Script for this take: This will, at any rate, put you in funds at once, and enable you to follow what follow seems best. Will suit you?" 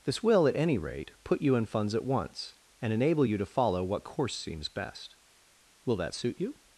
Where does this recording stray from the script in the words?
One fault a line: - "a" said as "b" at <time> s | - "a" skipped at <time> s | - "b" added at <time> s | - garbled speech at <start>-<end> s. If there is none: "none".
- "follow" said as "course" at 4.0 s
- "that" added at 6.0 s